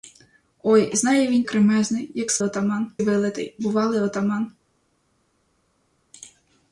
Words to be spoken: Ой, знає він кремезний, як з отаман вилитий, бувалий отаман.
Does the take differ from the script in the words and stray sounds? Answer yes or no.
no